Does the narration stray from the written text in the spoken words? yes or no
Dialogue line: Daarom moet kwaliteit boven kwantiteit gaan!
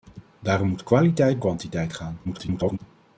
yes